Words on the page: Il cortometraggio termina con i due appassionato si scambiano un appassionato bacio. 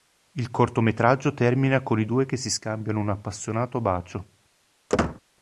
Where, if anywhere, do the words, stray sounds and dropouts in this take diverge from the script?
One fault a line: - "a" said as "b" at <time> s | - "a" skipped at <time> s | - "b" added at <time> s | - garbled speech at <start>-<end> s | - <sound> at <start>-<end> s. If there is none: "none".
- "appassionato" said as "che" at 2.2 s
- squeak at 4.9-5.2 s